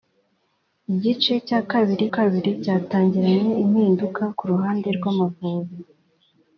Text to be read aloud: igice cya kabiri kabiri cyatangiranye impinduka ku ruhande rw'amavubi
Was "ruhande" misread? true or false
false